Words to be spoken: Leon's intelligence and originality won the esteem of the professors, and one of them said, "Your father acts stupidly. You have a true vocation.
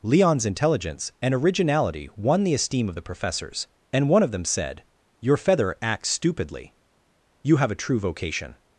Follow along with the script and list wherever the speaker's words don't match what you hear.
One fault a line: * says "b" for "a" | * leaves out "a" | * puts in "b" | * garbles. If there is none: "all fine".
* says "feather" for "father"